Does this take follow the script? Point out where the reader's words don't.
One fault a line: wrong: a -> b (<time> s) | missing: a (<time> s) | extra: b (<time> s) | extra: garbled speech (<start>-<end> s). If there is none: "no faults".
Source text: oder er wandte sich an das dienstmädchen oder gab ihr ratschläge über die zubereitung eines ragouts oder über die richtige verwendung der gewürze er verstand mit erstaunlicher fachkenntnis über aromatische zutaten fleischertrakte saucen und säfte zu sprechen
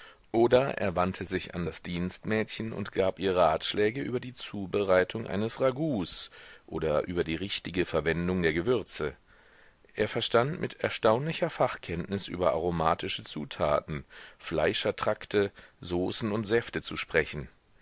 wrong: oder -> und (2.7 s)